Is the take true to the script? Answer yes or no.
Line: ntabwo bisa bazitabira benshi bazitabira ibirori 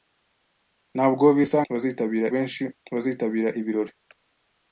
yes